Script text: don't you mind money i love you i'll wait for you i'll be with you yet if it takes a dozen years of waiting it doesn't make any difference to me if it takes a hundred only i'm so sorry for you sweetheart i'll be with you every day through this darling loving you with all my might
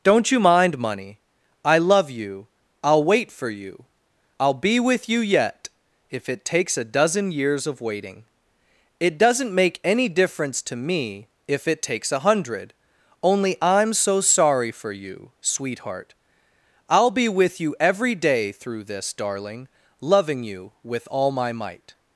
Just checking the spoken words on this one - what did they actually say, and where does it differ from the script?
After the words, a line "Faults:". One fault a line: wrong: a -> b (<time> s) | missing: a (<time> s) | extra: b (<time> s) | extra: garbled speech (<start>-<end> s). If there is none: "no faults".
don't you mind money i love you i'll wait for you i'll be with you yet if it takes a dozen years of waiting it doesn't make any difference to me if it takes a hundred only i'm so sorry for you sweetheart i'll be with you every day through this darling loving you with all my might
Faults:
no faults